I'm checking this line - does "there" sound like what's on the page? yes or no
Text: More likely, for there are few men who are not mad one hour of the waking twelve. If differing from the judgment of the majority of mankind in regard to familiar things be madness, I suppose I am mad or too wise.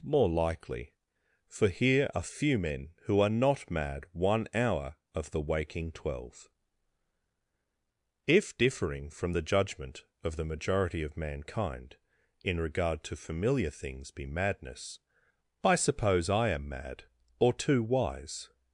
no